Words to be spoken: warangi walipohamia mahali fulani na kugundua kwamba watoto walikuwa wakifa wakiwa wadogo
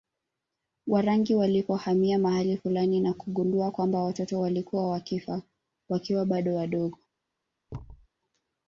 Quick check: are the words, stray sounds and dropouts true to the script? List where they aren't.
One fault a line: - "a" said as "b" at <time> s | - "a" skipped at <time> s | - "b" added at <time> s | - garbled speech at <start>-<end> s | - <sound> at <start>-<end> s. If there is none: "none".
- "bado" added at 6.2 s
- thud at 7.7-8.1 s